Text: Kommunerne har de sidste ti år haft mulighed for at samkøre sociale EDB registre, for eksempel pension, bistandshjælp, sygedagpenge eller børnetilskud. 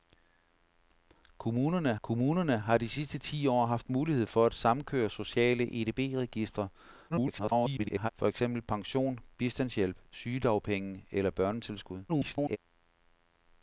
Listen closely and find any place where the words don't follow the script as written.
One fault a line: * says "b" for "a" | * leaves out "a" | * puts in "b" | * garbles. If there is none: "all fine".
* puts in "kommunerne"
* garbles
* garbles